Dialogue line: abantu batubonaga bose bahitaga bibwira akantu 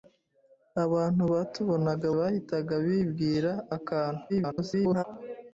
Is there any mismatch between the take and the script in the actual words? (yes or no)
yes